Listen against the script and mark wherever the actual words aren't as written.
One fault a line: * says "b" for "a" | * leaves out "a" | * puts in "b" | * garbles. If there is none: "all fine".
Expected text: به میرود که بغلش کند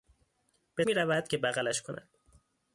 all fine